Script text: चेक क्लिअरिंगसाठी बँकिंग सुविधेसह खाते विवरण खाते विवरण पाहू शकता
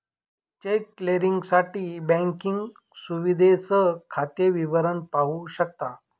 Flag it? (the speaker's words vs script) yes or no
yes